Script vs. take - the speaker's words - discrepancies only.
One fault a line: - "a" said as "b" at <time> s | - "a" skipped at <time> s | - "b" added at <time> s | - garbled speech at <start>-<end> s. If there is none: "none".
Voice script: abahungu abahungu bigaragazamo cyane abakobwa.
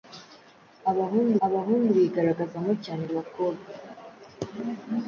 none